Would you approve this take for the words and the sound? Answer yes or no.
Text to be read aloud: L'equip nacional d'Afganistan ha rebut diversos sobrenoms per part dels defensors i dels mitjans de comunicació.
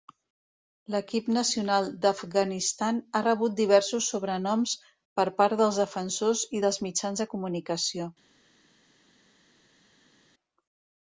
yes